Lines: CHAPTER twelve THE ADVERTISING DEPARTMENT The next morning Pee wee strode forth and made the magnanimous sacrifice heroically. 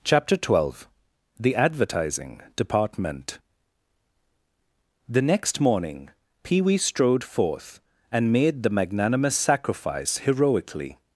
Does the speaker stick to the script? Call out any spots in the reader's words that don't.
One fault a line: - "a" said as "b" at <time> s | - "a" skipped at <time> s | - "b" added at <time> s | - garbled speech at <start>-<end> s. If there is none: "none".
none